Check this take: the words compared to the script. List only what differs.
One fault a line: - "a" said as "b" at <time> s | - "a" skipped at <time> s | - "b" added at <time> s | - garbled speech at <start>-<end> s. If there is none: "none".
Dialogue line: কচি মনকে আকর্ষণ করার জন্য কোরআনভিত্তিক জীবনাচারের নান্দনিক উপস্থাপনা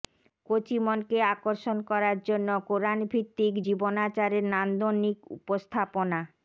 none